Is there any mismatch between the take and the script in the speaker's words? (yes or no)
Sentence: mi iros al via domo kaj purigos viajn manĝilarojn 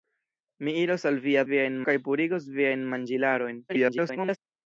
yes